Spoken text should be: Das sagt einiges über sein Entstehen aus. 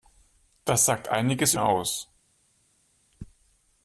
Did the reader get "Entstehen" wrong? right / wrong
wrong